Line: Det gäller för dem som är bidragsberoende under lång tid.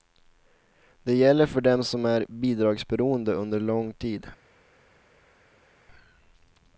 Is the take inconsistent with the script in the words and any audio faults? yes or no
no